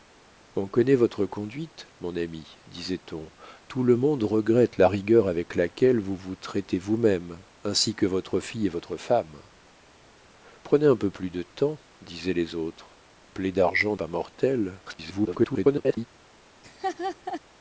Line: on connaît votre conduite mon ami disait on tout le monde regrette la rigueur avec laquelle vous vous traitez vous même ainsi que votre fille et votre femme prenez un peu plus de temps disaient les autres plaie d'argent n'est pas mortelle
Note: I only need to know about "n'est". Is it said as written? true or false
false